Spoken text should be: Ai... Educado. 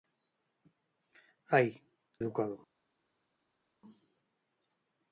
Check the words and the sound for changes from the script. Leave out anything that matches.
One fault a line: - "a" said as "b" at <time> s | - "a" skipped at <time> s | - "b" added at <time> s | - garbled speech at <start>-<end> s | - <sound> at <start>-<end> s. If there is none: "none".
none